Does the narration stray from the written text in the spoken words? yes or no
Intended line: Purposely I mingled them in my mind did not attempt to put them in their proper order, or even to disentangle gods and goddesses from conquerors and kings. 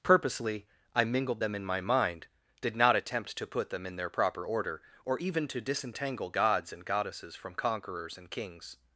no